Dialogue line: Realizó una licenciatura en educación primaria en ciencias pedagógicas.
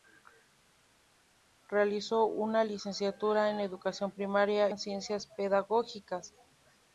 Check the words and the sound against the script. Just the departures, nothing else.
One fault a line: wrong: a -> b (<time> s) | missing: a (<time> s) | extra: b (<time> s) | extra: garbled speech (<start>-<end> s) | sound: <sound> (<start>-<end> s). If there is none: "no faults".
no faults